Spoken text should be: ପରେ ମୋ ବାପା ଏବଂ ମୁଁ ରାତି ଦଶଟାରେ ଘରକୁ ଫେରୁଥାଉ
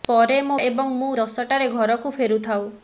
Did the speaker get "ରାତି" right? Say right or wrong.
wrong